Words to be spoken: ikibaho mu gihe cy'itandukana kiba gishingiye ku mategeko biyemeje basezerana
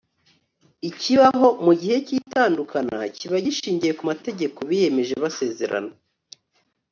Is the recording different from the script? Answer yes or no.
no